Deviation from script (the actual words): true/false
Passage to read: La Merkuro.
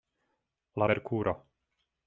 false